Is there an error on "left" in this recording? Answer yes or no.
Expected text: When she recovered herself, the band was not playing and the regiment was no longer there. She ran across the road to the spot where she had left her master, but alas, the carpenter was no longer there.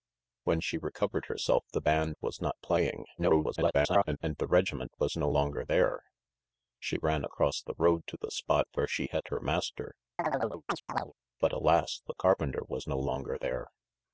yes